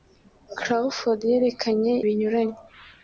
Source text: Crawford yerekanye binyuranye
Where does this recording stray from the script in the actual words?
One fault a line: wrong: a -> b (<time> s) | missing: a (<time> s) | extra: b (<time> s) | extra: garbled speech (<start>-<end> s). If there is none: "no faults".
no faults